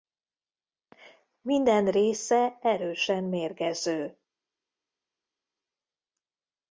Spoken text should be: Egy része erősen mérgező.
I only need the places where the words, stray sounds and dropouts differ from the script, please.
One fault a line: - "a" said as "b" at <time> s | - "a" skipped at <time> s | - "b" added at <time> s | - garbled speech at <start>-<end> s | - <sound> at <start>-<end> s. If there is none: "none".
- "Egy" said as "Minden" at 1.4 s